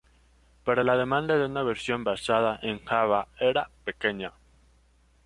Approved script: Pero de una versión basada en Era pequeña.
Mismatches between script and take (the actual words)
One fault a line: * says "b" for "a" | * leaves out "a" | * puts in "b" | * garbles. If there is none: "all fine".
* puts in "la demanda"
* puts in "Java"